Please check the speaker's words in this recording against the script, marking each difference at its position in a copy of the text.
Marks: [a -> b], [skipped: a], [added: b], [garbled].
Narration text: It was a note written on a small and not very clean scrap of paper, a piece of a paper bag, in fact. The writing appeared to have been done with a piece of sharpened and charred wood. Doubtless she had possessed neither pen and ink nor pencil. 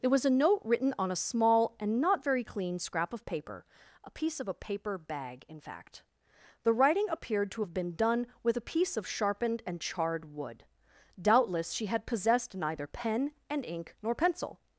It was a note written on a small and not very clean scrap of paper, a piece of a paper bag, in fact. The writing appeared to have been done with a piece of sharpened and charred wood. Doubtless she had possessed neither pen and ink nor pencil.